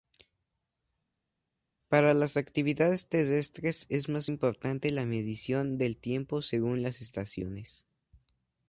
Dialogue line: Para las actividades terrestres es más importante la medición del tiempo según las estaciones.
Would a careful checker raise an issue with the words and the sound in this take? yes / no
no